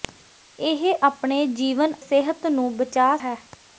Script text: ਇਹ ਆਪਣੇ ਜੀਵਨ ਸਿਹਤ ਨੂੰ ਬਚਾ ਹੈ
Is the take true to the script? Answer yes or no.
yes